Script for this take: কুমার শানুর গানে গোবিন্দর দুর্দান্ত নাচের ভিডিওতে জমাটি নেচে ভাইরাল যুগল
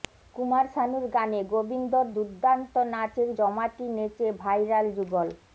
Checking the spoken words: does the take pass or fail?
fail